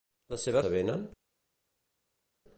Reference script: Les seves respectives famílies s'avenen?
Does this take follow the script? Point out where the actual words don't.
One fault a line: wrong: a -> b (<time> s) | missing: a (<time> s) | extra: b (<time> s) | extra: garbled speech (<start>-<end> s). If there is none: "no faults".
missing: respectives famílies (0.7 s)